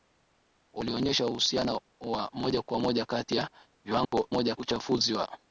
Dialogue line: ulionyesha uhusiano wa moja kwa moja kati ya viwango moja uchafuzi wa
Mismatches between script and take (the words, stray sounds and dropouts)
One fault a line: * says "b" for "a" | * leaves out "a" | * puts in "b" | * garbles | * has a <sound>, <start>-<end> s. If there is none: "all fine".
* has a dropout, 4.1-4.1 s